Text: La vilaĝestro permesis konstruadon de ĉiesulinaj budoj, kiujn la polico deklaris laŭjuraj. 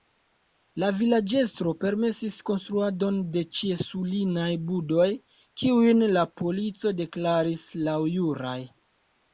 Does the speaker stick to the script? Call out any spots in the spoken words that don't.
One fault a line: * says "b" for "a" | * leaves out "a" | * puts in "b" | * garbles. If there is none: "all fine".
all fine